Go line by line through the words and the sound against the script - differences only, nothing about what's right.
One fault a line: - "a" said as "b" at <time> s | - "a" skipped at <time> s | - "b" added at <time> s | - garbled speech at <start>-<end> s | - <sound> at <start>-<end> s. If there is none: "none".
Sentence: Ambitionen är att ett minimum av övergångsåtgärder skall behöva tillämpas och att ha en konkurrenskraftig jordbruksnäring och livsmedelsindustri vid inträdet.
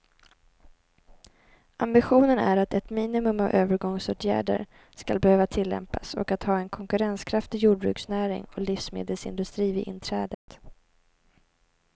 - dropout at 10.3-10.5 s